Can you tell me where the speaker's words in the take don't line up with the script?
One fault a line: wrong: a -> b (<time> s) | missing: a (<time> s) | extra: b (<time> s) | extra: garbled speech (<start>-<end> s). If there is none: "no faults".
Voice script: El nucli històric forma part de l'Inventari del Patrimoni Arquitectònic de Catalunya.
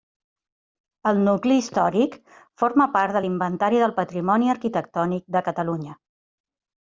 no faults